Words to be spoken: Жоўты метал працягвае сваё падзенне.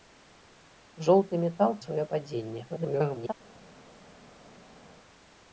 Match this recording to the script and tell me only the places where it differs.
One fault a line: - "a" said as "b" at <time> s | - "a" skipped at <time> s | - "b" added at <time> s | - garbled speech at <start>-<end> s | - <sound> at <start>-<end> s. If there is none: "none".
- "працягвае" skipped at 1.8 s
- garbled speech at 2.7-3.3 s